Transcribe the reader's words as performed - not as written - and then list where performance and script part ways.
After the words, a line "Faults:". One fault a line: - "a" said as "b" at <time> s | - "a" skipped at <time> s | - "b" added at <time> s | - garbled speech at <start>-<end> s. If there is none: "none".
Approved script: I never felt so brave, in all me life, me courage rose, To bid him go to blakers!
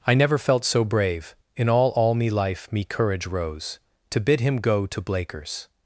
I never felt so brave, in all all me life, me courage rose, To bid him go to blakers!
Faults:
- "all" added at 1.9 s